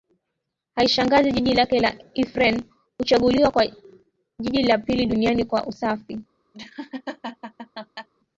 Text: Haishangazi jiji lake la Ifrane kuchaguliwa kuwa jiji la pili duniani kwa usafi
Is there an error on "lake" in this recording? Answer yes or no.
no